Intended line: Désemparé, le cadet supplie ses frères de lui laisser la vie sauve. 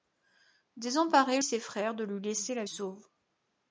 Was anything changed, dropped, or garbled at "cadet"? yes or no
yes